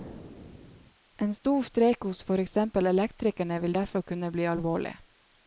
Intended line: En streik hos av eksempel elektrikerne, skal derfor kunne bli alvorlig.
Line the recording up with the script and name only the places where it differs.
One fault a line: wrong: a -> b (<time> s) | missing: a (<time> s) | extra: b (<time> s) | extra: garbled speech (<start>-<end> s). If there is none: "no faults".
extra: stor (1.3 s)
wrong: av -> for (2.3 s)
wrong: skal -> vil (3.6 s)